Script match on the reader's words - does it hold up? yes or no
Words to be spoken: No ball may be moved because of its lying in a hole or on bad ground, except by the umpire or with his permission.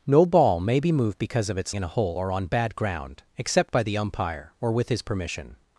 no